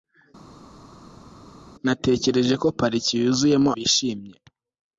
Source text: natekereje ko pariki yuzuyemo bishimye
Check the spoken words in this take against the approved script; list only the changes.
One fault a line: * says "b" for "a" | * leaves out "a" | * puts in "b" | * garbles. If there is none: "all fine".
all fine